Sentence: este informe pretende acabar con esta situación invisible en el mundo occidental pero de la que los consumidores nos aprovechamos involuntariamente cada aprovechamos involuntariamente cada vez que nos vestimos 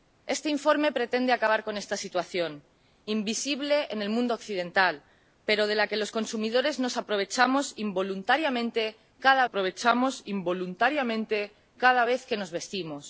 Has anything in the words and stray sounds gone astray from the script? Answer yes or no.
no